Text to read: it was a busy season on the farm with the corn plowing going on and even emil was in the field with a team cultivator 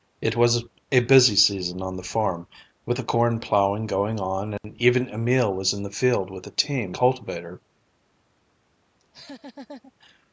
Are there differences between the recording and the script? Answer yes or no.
no